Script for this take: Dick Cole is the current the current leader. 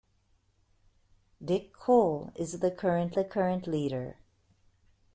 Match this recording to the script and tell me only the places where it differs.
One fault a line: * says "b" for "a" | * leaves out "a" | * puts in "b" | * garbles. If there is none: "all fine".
all fine